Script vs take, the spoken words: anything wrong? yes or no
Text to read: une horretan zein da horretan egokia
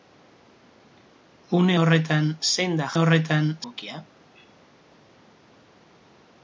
no